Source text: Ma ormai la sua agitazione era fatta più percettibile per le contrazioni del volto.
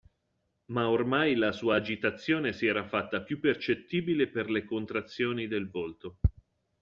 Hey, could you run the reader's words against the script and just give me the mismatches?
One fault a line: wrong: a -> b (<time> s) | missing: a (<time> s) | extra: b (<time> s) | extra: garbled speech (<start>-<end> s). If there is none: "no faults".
extra: si (2.5 s)